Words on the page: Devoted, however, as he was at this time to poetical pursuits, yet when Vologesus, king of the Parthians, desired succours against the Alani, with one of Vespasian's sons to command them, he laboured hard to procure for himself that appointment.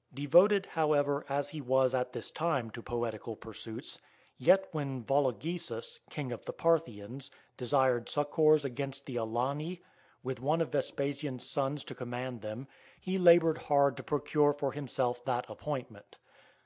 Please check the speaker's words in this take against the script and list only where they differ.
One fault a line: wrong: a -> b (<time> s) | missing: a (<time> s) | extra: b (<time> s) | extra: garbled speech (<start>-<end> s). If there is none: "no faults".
no faults